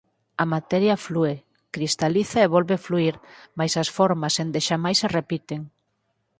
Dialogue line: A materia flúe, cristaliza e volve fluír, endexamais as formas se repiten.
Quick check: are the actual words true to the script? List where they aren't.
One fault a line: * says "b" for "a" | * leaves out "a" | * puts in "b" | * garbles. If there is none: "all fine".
* says "mais" for "endexamais"
* puts in "endexamais"